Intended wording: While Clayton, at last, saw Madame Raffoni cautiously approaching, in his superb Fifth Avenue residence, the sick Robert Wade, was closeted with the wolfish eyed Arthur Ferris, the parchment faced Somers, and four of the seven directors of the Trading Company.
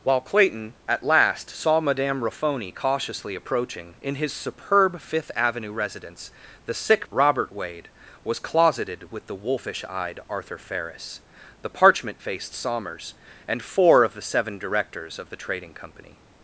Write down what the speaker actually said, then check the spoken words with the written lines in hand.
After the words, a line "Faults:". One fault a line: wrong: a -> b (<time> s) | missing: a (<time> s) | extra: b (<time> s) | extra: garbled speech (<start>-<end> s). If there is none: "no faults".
While Clayton, at last, saw Madame Raffoni cautiously approaching, in his superb Fifth Avenue residence, the sick Robert Wade, was closeted with the wolfish eyed Arthur Ferris, the parchment faced Somers, and four of the seven directors of the Trading Company.
Faults:
no faults